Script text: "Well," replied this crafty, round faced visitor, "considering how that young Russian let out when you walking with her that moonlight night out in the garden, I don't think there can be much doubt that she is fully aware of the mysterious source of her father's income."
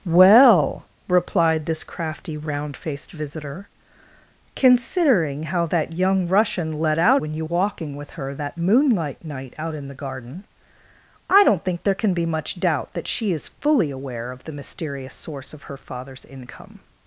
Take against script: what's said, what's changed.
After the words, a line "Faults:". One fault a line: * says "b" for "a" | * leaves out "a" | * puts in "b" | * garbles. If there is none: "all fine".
"Well," replied this crafty, round faced visitor, "considering how that young Russian let out when you walking with her that moonlight night out in the garden, I don't think there can be much doubt that she is fully aware of the mysterious source of her father's income."
Faults:
all fine